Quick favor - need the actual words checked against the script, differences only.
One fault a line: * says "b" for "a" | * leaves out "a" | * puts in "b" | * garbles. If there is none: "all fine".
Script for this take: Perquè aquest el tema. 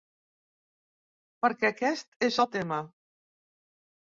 * puts in "és"